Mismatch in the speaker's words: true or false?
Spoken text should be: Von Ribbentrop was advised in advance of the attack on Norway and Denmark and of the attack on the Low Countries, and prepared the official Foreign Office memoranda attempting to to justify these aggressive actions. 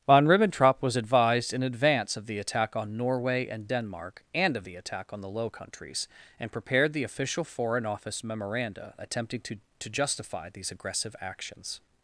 false